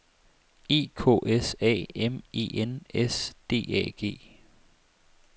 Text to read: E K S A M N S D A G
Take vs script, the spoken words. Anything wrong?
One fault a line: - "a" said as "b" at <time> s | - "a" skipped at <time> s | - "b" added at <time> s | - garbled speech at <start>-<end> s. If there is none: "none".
- "E" added at 2.3 s